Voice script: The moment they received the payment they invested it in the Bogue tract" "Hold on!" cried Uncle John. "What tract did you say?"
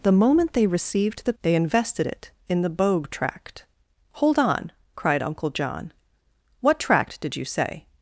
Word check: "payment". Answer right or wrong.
wrong